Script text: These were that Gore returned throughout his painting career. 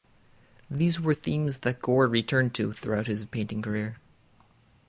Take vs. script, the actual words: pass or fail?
fail